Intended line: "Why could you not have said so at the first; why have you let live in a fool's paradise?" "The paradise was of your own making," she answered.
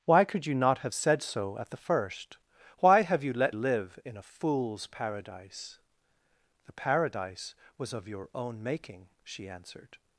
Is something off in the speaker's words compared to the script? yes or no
no